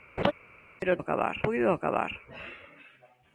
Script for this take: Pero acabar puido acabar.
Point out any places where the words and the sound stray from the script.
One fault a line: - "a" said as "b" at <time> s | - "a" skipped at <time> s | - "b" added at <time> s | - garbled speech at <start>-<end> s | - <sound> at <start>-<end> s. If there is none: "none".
- laugh at 0.2-0.3 s